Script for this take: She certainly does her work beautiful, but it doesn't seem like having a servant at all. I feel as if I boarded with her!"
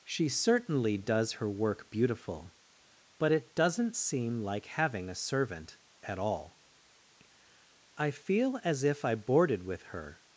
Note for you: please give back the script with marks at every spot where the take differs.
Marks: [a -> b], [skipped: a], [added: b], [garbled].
She certainly does her work beautiful, but it doesn't seem like having a servant at all. I feel as if I boarded with her!"